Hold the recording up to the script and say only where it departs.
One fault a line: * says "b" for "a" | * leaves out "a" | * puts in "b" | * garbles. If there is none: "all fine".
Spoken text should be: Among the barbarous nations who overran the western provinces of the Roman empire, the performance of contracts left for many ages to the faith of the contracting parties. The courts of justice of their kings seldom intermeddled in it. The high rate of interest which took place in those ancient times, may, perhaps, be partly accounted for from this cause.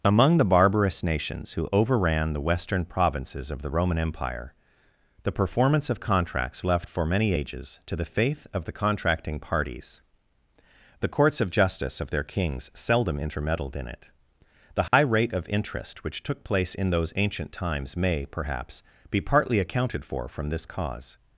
all fine